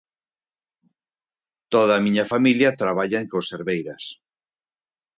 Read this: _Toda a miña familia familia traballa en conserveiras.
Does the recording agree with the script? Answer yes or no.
no